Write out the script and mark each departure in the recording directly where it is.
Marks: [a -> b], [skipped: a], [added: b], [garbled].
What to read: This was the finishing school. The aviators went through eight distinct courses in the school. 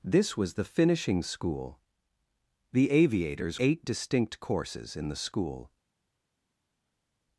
This was the finishing school. The aviators [skipped: went through] eight distinct courses in the school.